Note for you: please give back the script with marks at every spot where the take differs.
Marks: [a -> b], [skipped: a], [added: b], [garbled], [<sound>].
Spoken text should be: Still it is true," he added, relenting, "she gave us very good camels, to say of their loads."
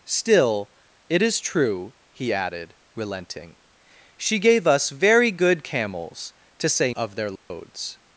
Still it is true," he added, relenting, "she gave us very good camels, to say of their loads." [dropout]